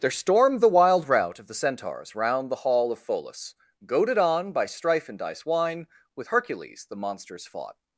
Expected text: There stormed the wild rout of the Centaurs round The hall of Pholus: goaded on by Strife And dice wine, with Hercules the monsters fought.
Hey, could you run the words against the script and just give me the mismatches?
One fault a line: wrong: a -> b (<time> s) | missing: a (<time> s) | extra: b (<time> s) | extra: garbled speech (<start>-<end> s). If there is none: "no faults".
no faults